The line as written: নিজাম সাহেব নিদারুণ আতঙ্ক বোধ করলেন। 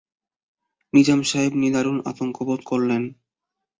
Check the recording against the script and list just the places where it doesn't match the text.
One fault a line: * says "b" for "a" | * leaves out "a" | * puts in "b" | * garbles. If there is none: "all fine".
all fine